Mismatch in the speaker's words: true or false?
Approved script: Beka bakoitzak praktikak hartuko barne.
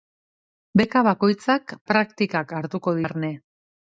false